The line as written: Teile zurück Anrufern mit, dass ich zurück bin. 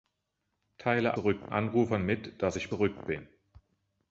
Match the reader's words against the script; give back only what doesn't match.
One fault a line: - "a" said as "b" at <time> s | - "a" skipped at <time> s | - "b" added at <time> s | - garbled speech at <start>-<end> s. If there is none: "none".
none